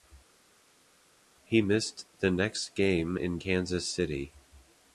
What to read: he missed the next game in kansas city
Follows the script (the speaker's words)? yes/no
yes